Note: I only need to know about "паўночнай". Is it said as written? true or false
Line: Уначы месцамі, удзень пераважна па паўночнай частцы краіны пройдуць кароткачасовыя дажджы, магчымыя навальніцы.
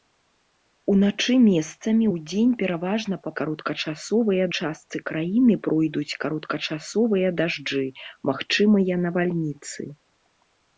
false